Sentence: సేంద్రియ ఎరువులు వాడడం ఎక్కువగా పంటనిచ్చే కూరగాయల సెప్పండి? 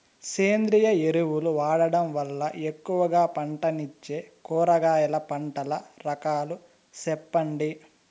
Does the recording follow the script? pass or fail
fail